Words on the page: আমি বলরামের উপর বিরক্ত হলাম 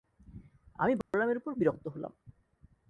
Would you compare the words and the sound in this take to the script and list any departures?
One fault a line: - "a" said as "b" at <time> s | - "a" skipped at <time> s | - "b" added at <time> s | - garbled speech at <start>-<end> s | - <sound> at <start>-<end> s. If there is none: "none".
- dropout at 1.0-1.1 s